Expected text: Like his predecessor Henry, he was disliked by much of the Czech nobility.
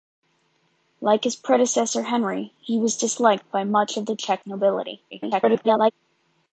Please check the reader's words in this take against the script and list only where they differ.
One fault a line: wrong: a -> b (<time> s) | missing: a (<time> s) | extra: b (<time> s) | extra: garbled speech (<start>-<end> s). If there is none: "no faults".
extra: garbled speech (5.1-5.9 s)